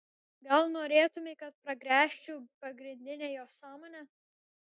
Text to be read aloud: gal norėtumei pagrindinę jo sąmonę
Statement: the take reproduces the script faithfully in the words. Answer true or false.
false